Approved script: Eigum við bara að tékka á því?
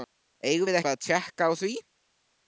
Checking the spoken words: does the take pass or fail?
pass